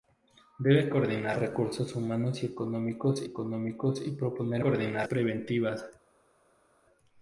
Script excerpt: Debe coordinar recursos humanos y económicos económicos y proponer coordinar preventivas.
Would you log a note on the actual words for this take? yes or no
no